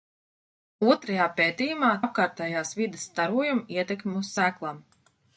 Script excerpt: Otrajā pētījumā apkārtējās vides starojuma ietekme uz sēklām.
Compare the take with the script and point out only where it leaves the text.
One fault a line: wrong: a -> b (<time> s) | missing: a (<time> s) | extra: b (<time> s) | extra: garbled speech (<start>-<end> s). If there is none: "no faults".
no faults